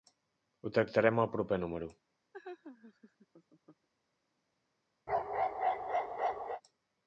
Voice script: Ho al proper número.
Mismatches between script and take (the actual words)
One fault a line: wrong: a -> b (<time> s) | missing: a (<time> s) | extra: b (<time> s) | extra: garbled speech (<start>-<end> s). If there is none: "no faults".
extra: tractarem (0.8 s)